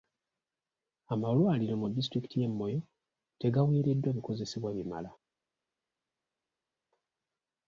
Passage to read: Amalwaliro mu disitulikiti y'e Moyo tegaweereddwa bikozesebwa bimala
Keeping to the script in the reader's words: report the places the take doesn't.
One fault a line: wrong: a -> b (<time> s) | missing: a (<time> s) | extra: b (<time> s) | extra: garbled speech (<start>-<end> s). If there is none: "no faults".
no faults